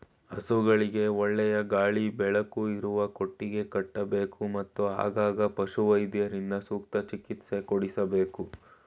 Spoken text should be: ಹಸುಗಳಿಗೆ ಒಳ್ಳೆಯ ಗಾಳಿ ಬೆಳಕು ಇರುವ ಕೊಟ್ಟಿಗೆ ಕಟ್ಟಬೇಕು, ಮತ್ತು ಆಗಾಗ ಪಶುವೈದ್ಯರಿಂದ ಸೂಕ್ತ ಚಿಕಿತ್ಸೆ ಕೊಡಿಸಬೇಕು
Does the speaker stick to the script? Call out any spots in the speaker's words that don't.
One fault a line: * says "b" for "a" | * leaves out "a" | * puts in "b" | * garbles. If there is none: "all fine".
all fine